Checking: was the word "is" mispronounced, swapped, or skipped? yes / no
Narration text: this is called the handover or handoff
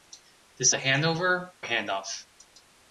yes